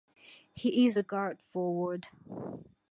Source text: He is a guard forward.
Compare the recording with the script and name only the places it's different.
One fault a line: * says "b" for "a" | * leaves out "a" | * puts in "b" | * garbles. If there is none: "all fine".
all fine